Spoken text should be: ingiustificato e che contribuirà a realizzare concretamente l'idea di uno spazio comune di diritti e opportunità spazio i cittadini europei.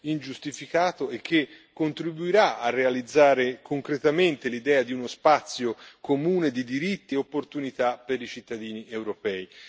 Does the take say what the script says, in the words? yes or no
no